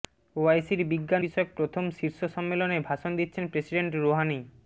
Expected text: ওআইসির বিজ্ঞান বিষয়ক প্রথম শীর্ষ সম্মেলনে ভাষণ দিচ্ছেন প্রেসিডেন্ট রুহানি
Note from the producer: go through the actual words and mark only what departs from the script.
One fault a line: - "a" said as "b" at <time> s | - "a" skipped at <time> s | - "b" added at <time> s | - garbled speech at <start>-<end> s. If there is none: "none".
none